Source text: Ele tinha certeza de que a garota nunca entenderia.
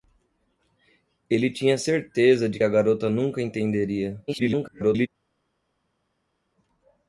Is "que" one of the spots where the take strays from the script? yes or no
yes